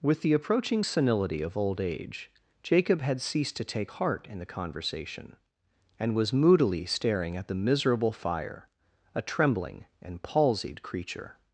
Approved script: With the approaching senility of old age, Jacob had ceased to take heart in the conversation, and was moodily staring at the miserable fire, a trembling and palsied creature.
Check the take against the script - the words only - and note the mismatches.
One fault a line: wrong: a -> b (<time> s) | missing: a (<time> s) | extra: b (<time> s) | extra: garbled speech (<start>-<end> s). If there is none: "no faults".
no faults